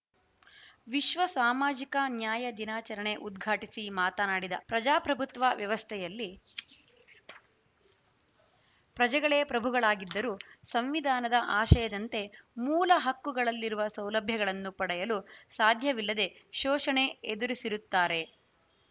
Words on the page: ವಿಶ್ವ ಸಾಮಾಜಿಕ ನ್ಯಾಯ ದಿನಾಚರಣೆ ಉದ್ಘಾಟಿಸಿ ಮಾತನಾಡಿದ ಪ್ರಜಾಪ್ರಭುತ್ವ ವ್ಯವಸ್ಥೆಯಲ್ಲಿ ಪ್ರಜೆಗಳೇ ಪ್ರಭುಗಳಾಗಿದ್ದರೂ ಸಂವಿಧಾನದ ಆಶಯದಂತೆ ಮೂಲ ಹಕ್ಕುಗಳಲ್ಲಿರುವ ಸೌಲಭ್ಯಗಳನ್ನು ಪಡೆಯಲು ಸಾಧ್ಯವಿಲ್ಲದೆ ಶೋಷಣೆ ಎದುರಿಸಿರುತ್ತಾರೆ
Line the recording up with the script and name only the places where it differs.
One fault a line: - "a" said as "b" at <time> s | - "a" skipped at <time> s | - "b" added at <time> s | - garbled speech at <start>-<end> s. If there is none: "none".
none